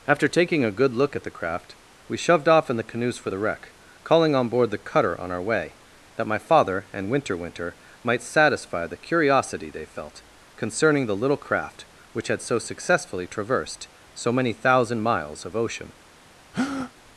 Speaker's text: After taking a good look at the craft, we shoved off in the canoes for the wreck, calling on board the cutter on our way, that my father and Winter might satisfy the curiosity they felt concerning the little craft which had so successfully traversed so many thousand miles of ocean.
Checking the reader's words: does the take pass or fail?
fail